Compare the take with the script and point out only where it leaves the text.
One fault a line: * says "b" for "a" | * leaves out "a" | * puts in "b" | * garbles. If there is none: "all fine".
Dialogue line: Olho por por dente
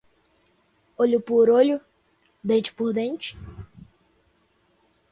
* puts in "olho dente"